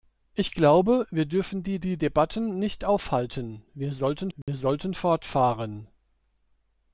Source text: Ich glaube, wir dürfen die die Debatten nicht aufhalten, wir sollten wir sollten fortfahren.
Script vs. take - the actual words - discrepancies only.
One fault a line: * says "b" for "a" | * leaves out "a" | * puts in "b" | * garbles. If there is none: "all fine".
all fine